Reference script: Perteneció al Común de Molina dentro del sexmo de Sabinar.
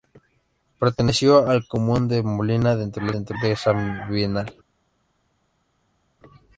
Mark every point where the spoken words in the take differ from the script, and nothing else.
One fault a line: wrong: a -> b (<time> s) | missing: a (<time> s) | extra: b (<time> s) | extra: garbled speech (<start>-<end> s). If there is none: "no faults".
wrong: sexmo -> dentro (3.1 s)